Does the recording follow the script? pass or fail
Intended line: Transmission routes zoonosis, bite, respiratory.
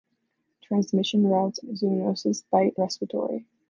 pass